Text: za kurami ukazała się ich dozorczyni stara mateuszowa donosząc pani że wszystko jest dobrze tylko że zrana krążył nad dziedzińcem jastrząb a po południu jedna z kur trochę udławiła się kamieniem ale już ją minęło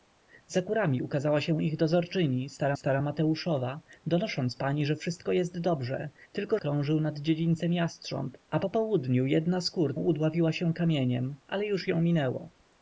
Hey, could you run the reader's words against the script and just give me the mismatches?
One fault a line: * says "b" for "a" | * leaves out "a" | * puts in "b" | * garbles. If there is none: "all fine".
* puts in "stara"
* leaves out "że zrana"
* leaves out "trochę"